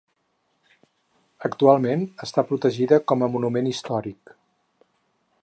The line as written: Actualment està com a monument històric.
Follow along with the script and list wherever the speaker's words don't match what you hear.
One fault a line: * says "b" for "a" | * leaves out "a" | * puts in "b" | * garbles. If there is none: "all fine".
* puts in "protegida"